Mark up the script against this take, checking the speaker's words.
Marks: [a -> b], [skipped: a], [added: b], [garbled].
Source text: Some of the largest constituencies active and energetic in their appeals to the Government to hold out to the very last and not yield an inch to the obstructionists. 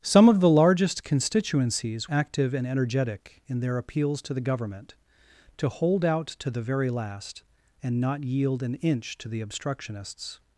Some of the largest constituencies active and energetic in their appeals to the Government to hold out to the very last and not yield an inch to the obstructionists.